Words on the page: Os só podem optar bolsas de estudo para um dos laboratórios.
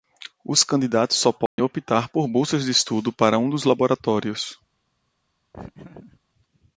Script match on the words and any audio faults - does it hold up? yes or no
no